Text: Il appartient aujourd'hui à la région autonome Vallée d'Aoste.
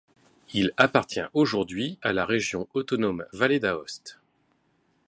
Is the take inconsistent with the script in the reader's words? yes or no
no